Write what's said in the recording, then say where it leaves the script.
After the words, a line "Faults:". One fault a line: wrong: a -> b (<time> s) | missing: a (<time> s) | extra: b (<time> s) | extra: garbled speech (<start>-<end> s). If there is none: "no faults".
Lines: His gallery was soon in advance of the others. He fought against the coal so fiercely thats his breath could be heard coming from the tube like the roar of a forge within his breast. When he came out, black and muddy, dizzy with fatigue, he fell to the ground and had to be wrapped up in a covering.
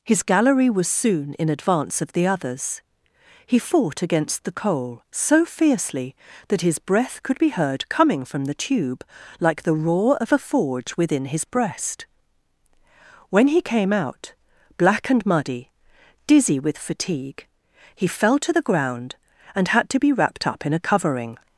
His gallery was soon in advance of the others. He fought against the coal so fiercely that his breath could be heard coming from the tube like the roar of a forge within his breast. When he came out, black and muddy, dizzy with fatigue, he fell to the ground and had to be wrapped up in a covering.
Faults:
wrong: thats -> that (6.5 s)